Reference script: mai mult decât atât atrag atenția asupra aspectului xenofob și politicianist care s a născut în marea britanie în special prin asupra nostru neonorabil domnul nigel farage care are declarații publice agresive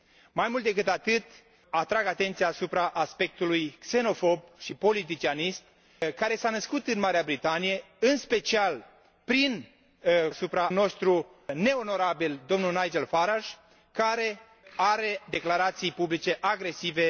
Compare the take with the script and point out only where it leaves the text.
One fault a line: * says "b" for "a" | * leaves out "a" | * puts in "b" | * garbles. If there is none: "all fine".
all fine